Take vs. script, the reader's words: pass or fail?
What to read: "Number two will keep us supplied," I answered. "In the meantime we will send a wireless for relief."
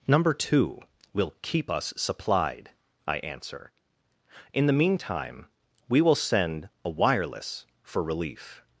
fail